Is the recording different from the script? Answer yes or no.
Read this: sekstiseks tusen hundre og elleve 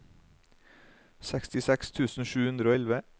yes